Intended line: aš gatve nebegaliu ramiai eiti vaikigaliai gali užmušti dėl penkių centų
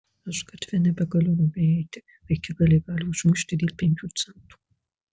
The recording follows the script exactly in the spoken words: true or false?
true